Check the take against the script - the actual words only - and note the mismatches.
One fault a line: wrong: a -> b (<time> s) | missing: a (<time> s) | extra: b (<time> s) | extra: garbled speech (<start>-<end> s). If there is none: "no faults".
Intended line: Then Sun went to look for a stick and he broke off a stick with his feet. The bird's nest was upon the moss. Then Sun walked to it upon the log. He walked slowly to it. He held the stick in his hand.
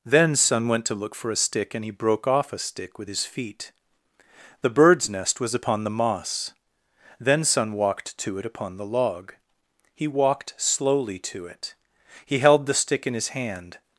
no faults